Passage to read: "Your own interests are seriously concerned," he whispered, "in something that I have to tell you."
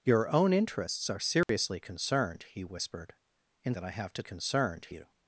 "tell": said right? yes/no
no